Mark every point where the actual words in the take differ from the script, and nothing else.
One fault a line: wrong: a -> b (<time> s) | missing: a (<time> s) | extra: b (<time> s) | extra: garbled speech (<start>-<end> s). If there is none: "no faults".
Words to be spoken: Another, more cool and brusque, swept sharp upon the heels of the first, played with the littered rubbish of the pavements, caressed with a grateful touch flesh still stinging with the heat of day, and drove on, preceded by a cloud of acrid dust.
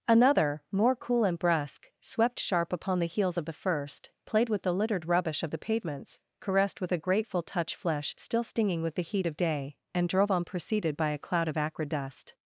no faults